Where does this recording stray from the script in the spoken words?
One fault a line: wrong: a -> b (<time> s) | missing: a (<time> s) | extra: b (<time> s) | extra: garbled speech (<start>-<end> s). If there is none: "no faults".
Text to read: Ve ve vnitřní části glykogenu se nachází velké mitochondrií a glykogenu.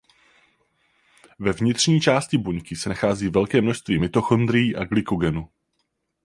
missing: ve (1.5 s)
wrong: glykogenu -> buňky (2.4 s)
extra: množství (3.6 s)